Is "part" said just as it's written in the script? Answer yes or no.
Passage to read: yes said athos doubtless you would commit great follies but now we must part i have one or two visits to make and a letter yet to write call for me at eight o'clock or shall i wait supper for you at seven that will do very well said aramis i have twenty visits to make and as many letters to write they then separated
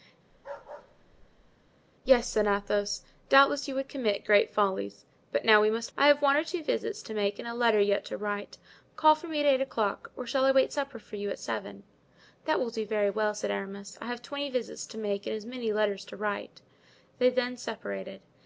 no